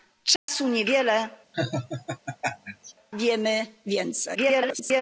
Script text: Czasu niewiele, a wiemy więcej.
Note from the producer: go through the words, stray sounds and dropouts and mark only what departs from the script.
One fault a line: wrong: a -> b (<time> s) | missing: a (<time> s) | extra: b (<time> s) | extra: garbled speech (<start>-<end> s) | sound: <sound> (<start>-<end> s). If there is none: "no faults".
sound: dropout (0.4-0.5 s)
missing: a (1.3 s)
sound: laugh (1.5-2.9 s)
extra: garbled speech (4.3-5.0 s)